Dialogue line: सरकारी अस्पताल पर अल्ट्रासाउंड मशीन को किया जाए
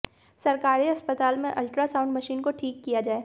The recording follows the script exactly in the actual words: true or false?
false